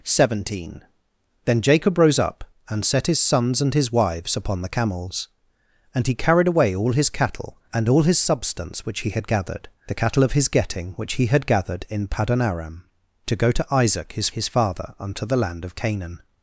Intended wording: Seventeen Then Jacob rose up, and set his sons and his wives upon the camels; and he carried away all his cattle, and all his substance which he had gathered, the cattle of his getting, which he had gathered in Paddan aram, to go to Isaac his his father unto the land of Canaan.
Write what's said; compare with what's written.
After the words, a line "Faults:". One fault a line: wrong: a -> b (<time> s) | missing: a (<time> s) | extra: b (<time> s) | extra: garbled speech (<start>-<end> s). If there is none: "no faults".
Seventeen Then Jacob rose up, and set his sons and his wives upon the camels; and he carried away all his cattle, and all his substance which he had gathered, the cattle of his getting, which he had gathered in Paddan aram, to go to Isaac his his father unto the land of Canaan.
Faults:
no faults